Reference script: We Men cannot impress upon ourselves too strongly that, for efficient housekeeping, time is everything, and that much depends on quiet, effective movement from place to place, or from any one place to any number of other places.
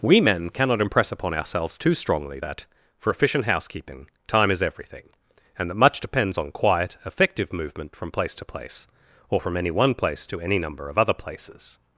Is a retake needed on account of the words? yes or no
no